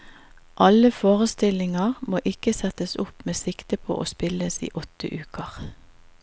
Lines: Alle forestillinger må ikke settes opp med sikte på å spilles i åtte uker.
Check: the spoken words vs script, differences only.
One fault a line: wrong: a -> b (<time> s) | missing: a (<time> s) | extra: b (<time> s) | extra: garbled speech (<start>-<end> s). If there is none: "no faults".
no faults